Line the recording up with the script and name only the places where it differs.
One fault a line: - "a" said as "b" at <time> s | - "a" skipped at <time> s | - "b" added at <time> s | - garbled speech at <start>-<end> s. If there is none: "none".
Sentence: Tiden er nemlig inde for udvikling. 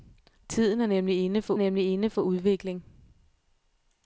- "nemlig inde for" added at 1.6 s